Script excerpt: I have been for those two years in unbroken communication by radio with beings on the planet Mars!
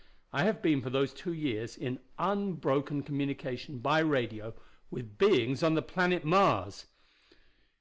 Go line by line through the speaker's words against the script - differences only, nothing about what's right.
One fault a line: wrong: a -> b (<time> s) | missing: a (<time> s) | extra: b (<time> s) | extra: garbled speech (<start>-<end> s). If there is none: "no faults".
no faults